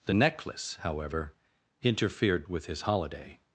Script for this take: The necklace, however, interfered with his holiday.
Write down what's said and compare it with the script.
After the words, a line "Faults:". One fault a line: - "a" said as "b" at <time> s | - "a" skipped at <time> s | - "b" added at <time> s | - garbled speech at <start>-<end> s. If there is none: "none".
The necklace, however, interfered with his holiday.
Faults:
none